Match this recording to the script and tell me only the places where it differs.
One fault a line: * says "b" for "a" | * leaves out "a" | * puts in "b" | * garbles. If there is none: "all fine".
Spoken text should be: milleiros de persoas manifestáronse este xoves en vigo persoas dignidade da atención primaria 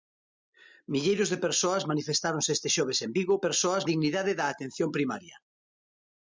all fine